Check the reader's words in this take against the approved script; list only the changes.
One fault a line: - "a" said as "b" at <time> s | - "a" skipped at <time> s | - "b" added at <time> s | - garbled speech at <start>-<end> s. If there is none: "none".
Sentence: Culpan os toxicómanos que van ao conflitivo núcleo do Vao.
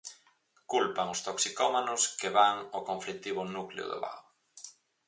none